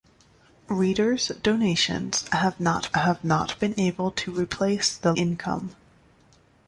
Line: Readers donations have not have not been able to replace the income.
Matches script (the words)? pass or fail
pass